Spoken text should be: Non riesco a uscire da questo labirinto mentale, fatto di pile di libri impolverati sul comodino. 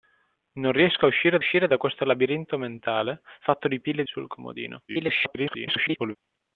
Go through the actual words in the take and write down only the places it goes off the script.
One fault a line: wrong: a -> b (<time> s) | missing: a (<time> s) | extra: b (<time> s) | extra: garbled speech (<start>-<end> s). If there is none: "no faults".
extra: uscire (1.4 s)
missing: di libri impolverati (4.0 s)
extra: garbled speech (4.9-6.2 s)